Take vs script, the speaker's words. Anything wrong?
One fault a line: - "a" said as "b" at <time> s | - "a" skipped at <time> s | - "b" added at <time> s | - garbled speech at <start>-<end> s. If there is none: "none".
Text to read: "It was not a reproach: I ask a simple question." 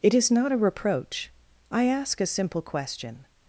- "was" said as "is" at 0.1 s